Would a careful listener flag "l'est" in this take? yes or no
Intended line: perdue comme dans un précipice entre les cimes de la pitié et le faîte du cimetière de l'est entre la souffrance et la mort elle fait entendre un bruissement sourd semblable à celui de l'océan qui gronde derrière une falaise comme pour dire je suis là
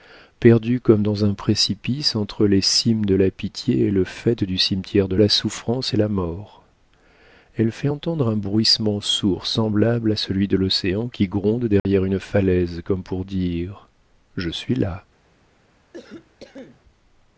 yes